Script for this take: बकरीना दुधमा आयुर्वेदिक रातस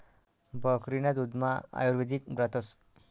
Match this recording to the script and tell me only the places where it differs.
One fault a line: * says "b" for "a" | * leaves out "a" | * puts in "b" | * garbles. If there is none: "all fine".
all fine